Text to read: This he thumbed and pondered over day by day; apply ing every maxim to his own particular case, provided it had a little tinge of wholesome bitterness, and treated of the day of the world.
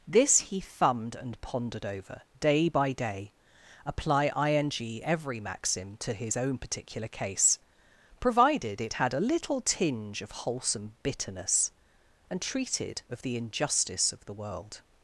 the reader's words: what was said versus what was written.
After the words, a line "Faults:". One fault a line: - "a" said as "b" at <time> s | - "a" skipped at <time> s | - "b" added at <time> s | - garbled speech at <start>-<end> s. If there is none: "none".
This he thumbed and pondered over day by day; apply ing every maxim to his own particular case, provided it had a little tinge of wholesome bitterness, and treated of the injustice of the world.
Faults:
- "day" said as "injustice" at 13.4 s